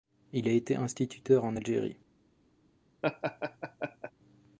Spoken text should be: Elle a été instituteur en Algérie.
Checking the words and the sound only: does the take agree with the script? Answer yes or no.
no